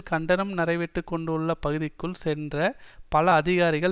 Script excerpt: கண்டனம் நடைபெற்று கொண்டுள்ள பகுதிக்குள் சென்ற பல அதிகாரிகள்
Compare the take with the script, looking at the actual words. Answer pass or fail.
pass